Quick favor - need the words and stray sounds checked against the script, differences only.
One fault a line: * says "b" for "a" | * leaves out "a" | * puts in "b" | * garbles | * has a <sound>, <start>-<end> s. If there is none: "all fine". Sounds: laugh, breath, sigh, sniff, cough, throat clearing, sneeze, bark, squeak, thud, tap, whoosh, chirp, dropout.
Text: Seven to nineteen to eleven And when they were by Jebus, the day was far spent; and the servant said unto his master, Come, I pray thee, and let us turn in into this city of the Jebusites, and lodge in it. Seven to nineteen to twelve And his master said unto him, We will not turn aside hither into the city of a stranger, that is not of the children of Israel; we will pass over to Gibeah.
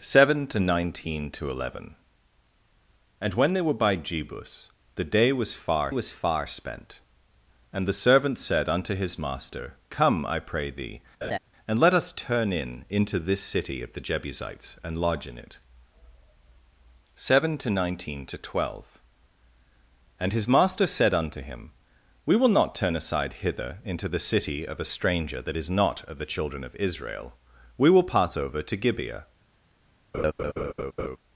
* puts in "was far"
* has a laugh, 11.2-11.4 s
* has a laugh, 30.1-31.2 s